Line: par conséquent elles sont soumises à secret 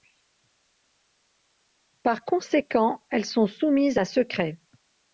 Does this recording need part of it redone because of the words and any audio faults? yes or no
no